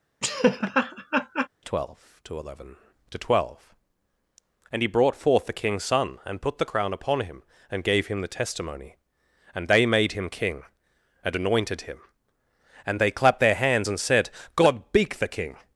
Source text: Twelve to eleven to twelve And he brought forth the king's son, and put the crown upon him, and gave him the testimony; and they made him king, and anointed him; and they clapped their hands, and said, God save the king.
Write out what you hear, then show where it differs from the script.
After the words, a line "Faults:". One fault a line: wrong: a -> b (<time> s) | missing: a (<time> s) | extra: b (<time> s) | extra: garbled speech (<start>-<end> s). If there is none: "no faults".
Twelve to eleven to twelve And he brought forth the king's son, and put the crown upon him, and gave him the testimony; and they made him king, and anointed him; and they clapped their hands, and said, God beak the king.
Faults:
wrong: save -> beak (14.9 s)